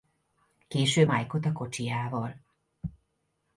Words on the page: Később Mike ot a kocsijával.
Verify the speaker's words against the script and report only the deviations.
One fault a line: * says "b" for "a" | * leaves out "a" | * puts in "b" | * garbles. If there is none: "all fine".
all fine